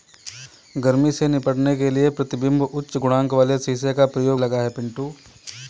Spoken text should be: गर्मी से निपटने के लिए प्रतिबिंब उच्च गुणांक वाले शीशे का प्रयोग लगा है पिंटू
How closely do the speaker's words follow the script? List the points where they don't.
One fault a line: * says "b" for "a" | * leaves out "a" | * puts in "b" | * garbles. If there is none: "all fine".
all fine